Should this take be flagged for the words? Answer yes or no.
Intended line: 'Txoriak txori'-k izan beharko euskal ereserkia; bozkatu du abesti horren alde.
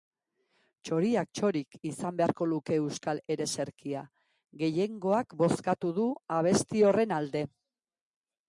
yes